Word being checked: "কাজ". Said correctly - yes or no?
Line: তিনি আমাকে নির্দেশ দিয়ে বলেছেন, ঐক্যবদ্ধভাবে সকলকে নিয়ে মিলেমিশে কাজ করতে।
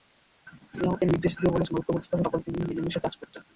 yes